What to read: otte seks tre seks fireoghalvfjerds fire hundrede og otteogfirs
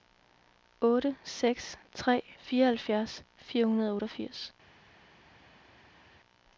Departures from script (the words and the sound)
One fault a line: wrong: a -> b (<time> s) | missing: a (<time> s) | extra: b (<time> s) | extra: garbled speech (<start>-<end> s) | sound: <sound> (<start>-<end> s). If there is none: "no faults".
missing: seks (2.2 s)